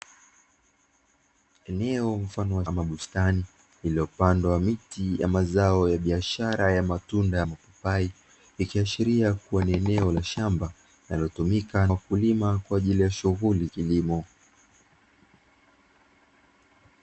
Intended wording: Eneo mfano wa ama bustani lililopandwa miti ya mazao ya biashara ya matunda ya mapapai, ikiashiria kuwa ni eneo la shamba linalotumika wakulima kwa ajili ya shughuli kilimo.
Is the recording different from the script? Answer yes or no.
no